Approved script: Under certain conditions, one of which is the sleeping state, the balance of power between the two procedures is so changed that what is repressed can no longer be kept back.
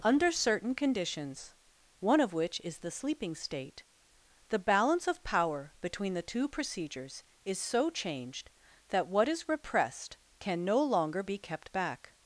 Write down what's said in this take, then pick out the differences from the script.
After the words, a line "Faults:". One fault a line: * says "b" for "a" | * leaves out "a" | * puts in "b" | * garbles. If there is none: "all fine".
Under certain conditions, one of which is the sleeping state, the balance of power between the two procedures is so changed that what is repressed can no longer be kept back.
Faults:
all fine